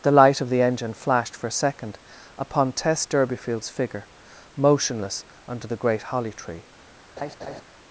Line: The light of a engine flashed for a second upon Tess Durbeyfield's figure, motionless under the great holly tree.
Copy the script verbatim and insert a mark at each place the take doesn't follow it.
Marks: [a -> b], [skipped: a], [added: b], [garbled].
The light of [a -> the] engine flashed for a second upon Tess Durbeyfield's figure, motionless under the great holly tree.